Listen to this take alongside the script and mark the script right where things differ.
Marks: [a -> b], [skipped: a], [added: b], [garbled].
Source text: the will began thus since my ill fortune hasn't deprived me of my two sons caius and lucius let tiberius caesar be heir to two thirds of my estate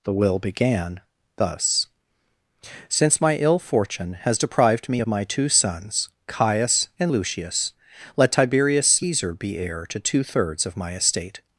the will began thus since my ill fortune [hasn't -> has] deprived me of my two sons caius and lucius let tiberius caesar be heir to two thirds of my estate